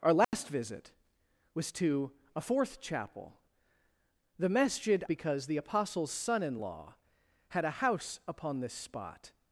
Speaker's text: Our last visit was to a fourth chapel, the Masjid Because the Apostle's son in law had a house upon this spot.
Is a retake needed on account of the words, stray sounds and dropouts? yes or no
yes